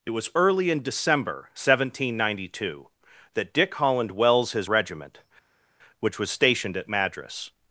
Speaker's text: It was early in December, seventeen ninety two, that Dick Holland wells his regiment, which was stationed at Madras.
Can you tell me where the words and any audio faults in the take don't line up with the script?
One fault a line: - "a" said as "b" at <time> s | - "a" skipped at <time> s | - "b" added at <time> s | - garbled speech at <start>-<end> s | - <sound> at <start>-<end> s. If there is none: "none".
none